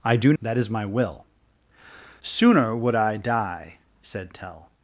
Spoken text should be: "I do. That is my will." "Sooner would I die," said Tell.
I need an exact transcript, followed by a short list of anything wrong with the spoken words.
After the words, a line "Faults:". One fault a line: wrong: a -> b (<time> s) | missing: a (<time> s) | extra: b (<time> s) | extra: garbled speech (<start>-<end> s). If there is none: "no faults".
"I do. That is my will." "Sooner would I die," said Tell.
Faults:
no faults